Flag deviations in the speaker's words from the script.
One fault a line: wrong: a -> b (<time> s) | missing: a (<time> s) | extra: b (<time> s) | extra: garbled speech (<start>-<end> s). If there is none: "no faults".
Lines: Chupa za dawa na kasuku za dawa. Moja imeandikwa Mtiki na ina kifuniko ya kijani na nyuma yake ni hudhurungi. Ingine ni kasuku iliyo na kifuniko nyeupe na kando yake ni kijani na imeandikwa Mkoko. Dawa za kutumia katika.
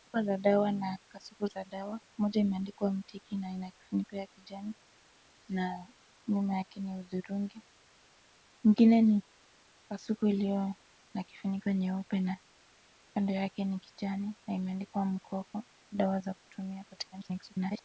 extra: garbled speech (17.1-17.8 s)